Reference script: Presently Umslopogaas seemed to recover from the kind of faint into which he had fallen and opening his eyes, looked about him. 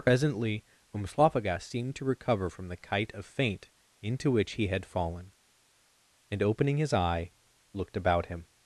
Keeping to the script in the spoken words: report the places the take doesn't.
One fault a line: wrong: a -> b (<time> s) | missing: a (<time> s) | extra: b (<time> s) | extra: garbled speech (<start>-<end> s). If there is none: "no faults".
wrong: kind -> kite (2.8 s)
wrong: eyes -> eye (6.9 s)